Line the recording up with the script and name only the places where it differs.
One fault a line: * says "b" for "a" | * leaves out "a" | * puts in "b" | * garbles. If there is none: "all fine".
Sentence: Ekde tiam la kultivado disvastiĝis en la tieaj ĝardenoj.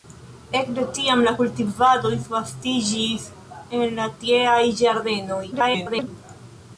* garbles